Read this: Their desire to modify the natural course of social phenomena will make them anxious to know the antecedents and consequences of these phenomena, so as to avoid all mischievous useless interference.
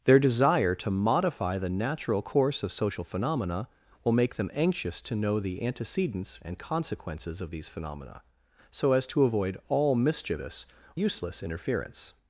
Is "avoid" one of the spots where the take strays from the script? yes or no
no